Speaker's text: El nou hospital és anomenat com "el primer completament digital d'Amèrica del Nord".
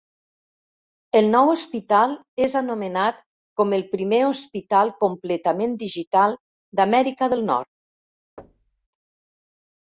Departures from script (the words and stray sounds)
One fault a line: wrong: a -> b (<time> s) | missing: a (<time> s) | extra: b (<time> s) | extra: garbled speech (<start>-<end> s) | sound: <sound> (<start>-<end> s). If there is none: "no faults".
extra: hospital (4.3 s)
sound: thud (8.4-8.9 s)